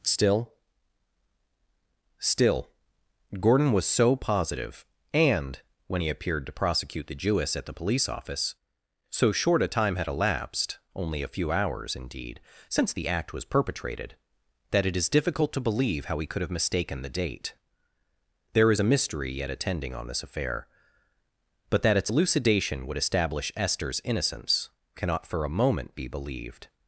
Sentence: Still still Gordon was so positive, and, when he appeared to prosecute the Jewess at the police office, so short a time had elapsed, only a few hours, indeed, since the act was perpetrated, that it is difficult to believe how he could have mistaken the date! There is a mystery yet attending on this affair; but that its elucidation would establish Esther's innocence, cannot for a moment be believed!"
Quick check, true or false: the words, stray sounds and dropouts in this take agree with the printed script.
true